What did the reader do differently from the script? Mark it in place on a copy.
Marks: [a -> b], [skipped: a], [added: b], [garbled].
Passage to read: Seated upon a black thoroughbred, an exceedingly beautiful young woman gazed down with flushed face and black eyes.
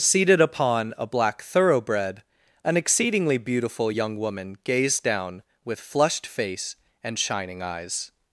Seated upon a black thoroughbred, an exceedingly beautiful young woman gazed down with flushed face and [black -> shining] eyes.